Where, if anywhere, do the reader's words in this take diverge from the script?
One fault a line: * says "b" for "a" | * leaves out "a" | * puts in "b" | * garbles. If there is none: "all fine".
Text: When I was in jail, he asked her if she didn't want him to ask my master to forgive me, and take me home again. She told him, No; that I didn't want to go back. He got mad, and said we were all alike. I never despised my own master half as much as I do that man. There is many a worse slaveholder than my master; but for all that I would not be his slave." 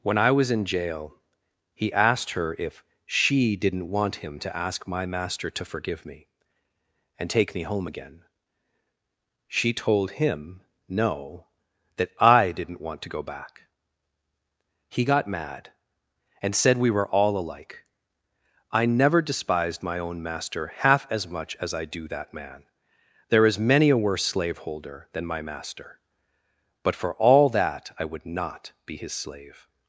all fine